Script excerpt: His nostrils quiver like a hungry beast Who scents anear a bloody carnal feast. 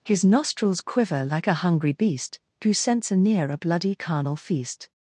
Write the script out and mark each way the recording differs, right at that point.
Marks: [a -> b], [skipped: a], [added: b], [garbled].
His nostrils quiver like a hungry beast Who scents anear a bloody carnal feast.